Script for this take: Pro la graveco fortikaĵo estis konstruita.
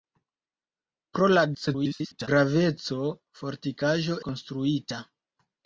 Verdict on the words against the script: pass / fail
fail